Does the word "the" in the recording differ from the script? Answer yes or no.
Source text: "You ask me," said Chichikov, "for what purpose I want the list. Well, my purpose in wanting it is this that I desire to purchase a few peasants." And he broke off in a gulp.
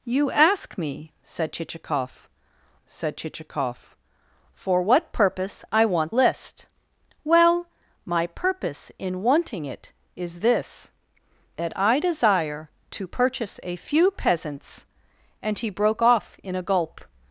yes